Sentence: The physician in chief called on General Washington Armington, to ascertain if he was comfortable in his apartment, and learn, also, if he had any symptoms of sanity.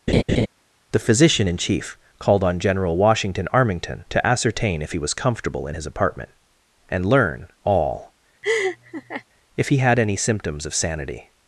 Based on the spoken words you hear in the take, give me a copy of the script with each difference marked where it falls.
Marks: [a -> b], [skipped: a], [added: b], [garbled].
The physician in chief called on General Washington Armington, to ascertain if he was comfortable in his apartment, and learn, [also, -> all] if he had any symptoms of sanity.